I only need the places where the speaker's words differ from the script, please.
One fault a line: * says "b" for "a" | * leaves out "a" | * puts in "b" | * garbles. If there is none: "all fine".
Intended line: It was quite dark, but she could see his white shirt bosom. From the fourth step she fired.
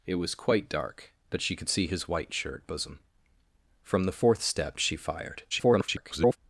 * garbles